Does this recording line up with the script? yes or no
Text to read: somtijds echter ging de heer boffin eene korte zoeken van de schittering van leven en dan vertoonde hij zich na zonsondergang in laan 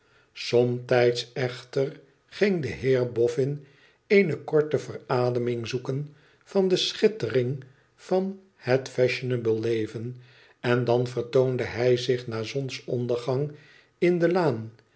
no